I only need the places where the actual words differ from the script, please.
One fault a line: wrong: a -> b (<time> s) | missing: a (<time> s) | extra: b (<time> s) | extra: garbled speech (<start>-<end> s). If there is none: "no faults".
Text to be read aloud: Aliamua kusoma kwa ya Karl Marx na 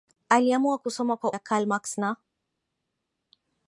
no faults